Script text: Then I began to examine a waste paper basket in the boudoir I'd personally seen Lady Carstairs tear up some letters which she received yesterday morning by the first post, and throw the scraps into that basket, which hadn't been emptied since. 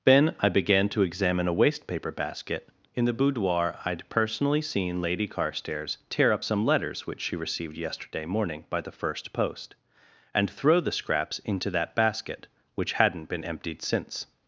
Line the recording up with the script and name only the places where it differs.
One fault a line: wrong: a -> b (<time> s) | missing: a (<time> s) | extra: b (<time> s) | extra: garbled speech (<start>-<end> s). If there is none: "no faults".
no faults